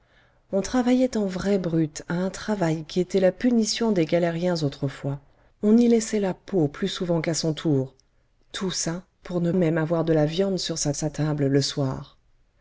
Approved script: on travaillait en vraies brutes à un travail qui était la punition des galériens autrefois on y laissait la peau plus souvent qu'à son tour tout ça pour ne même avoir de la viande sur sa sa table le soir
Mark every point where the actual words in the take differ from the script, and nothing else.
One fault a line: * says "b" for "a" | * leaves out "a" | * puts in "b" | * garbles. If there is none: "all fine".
all fine